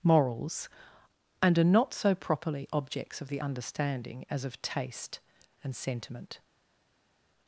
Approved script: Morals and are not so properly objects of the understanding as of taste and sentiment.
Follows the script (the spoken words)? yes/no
yes